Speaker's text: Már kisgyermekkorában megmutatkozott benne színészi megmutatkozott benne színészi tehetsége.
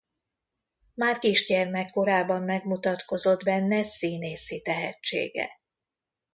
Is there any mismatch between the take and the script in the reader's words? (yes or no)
yes